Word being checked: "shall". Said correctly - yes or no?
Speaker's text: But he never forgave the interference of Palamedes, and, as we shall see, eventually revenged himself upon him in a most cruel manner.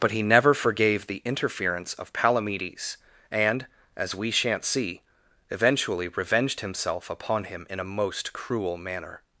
no